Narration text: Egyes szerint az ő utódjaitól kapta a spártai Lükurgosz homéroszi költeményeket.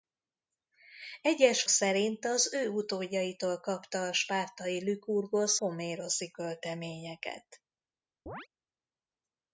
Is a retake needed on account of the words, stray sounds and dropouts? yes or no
yes